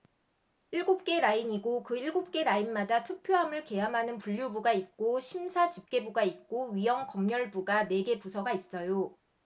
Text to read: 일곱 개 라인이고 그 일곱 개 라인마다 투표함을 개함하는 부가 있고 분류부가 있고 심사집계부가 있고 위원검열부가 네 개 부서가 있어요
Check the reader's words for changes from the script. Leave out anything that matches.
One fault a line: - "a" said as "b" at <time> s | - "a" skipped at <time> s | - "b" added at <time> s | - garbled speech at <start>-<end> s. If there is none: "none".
- "부가 있고" skipped at 4.2 s